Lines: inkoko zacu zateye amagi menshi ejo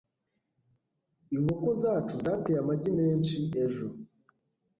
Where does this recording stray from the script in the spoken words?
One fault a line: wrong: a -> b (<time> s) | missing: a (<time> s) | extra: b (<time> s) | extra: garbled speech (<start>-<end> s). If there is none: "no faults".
no faults